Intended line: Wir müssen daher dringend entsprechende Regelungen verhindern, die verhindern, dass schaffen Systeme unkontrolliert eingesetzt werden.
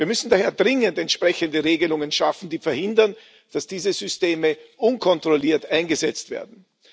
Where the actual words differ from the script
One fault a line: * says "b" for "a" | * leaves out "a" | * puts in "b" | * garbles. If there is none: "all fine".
* says "schaffen" for "verhindern"
* says "diese" for "schaffen"